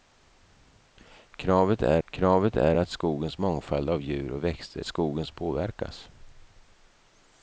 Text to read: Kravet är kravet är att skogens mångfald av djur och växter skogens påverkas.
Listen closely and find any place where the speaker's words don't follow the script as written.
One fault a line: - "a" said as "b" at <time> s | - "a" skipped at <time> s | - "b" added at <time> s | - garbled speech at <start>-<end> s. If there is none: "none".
none